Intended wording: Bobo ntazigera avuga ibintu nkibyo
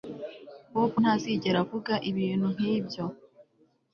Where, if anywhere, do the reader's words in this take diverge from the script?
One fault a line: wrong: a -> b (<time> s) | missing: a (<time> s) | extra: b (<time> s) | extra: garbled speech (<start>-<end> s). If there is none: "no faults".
no faults